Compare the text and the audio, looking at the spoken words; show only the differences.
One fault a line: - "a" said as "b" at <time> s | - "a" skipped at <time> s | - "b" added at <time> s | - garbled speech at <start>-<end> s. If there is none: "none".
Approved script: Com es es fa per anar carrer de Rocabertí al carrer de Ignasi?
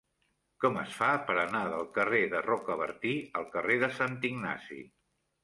- "es" skipped at 0.9 s
- "del" added at 1.7 s
- "Sant" added at 4.0 s